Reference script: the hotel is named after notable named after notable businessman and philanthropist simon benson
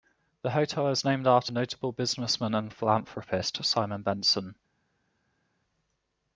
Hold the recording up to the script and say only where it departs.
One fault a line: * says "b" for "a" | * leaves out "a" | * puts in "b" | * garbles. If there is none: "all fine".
* leaves out "named after notable"